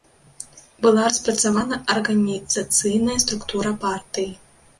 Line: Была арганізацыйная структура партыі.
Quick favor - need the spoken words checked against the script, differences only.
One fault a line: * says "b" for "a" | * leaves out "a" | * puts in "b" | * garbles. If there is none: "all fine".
* puts in "распрацавана"